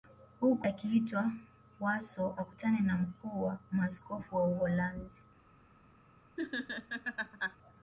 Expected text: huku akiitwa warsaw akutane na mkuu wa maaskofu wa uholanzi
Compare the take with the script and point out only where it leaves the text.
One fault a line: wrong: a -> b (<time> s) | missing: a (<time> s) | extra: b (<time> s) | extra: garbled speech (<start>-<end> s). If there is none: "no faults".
no faults